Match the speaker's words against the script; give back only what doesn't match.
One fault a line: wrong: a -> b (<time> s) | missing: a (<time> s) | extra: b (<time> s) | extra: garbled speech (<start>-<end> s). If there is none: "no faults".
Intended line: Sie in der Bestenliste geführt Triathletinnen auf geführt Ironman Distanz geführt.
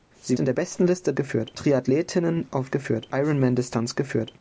no faults